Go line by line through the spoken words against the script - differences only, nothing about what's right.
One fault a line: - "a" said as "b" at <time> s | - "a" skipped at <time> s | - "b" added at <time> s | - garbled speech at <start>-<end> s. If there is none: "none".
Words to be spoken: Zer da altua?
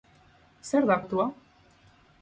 none